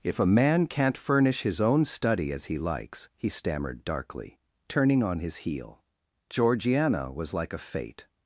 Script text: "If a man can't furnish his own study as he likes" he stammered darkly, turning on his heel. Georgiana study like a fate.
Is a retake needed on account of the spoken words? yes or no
yes